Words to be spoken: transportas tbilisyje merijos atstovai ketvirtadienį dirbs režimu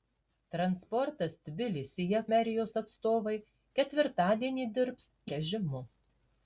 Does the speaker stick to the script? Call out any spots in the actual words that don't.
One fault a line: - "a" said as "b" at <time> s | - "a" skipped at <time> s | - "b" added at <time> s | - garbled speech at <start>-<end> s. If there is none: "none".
none